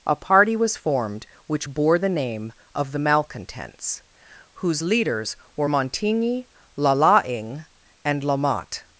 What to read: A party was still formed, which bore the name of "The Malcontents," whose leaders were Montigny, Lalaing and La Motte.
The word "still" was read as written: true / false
false